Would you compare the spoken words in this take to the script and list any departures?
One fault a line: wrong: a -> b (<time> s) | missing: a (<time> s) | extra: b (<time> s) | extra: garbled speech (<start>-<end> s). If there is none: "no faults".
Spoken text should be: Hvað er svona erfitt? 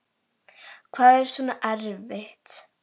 no faults